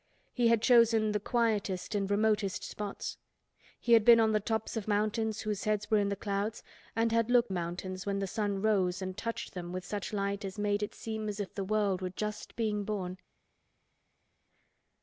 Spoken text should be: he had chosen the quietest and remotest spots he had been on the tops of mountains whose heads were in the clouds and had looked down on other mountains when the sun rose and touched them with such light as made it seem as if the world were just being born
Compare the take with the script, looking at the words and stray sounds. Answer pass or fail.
fail